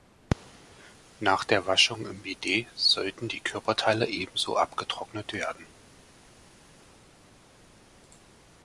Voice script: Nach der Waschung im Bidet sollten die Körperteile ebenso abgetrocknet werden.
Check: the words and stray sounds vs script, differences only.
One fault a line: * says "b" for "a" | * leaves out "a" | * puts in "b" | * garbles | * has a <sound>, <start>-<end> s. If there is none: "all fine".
all fine